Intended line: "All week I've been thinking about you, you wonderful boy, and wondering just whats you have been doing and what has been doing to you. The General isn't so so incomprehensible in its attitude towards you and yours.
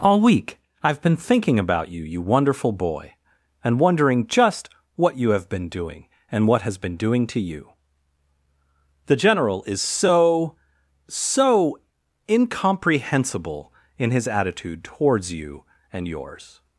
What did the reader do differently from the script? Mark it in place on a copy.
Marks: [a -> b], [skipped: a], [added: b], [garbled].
"All week I've been thinking about you, you wonderful boy, and wondering just [whats -> what] you have been doing and what has been doing to you. The General [isn't -> is] so so incomprehensible in [its -> his] attitude towards you and yours.